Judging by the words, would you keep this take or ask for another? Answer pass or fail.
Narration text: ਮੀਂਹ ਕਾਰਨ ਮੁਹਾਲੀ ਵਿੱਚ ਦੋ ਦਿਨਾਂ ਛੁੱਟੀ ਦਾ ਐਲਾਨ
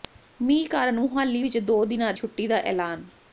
pass